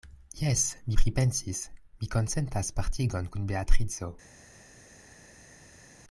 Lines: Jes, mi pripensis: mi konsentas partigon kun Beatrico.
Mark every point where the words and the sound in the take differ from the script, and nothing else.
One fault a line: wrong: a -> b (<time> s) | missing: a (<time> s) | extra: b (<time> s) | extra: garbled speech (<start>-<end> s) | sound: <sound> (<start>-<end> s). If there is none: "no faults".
no faults